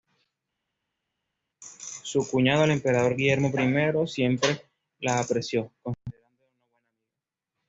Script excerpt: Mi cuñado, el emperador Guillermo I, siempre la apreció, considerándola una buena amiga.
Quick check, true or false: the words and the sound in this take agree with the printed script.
false